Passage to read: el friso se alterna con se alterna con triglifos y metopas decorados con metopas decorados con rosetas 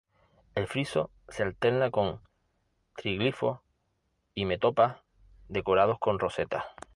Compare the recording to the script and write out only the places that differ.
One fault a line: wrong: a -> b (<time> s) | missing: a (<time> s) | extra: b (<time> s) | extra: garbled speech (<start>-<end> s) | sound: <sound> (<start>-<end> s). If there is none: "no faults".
missing: se alterna con (2.2 s)
missing: metopas decorados con (6.2 s)